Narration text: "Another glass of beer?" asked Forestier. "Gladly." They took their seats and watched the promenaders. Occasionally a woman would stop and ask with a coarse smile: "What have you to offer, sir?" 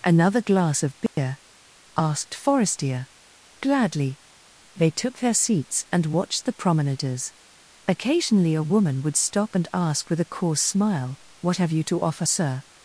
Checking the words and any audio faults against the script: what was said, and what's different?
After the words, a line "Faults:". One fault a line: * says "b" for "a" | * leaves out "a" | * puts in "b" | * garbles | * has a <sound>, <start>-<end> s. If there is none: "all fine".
"Another glass of beer?" asked Forestier. "Gladly." They took their seats and watched the promenaders. Occasionally a woman would stop and ask with a coarse smile: "What have you to offer, sir?"
Faults:
* has a dropout, 1.1-1.2 s